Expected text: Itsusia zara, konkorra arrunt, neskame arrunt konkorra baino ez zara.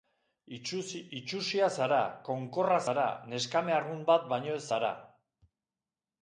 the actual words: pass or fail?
fail